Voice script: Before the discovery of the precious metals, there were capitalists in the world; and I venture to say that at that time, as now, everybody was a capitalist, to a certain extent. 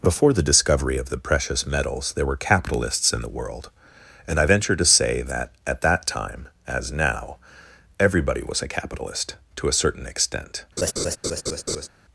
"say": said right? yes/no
yes